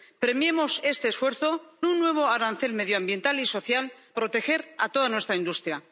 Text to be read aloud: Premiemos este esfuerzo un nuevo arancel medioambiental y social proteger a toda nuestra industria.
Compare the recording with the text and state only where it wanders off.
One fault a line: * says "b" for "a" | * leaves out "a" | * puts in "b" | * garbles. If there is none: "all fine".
all fine